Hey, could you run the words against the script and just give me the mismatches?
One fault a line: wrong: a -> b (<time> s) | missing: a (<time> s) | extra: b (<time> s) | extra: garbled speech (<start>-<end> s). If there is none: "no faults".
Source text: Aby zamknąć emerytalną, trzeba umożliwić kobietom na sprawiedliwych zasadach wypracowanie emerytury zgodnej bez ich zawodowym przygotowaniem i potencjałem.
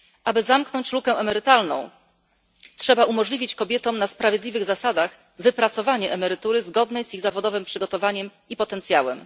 extra: lukę (0.9 s)
wrong: bez -> z (7.0 s)